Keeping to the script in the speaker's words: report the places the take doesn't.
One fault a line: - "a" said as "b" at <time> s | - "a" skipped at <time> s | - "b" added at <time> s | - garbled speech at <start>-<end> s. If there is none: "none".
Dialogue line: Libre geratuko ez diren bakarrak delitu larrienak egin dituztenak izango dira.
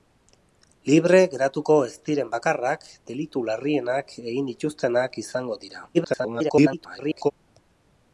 - garbled speech at 5.9-7.3 s